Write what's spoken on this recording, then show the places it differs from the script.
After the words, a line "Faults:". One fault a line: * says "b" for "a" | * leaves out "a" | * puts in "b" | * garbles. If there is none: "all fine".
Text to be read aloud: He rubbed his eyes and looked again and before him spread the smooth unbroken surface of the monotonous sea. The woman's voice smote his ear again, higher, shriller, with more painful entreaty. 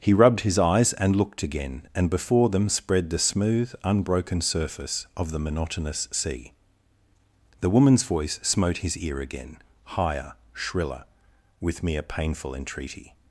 He rubbed his eyes and looked again and before them spread the smooth unbroken surface of the monotonous sea. The woman's voice smote his ear again, higher, shriller, with mere painful entreaty.
Faults:
* says "them" for "him"
* says "mere" for "more"